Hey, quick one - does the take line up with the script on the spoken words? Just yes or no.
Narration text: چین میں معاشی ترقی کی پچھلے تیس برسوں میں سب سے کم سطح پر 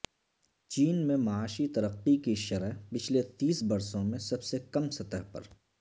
no